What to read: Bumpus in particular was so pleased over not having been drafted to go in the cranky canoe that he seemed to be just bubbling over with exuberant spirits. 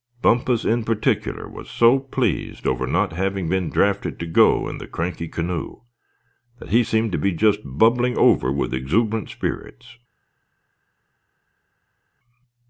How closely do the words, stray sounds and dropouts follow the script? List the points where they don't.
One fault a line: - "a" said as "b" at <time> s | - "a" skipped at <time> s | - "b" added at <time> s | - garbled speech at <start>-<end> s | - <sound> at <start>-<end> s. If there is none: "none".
none